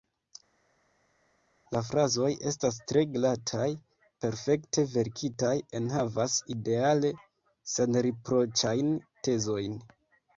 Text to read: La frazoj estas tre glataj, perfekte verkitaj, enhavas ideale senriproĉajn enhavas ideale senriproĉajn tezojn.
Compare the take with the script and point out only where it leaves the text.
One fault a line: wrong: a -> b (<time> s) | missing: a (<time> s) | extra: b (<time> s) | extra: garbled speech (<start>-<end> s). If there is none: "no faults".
missing: enhavas ideale senriproĉajn (8.9 s)